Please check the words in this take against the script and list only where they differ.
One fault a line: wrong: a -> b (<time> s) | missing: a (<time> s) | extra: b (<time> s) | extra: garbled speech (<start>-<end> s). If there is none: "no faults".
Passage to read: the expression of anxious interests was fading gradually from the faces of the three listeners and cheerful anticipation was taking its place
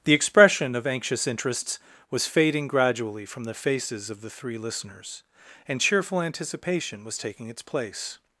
no faults